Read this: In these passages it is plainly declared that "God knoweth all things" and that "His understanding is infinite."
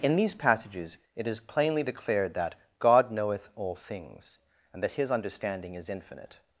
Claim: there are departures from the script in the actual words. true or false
false